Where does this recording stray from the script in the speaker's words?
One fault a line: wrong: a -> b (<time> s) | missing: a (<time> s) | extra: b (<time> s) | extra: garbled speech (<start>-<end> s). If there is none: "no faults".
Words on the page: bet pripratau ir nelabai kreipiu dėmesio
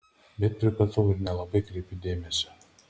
no faults